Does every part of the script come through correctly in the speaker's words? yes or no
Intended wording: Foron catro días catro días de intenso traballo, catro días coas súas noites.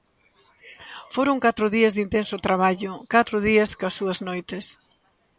no